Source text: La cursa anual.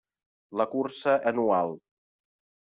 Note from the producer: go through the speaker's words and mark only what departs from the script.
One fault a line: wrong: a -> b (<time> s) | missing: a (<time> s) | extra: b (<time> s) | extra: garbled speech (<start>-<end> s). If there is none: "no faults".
no faults